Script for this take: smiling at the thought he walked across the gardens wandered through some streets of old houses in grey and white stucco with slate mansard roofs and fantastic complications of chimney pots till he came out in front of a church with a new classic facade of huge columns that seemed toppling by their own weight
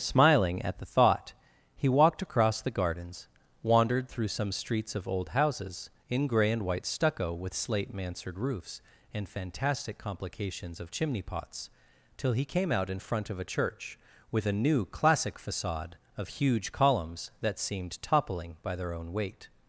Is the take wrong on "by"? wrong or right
right